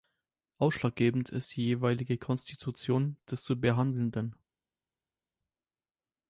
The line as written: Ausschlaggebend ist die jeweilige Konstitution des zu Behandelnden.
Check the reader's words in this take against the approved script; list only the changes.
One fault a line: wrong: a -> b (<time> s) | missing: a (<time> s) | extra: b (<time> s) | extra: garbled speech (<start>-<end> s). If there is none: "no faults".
no faults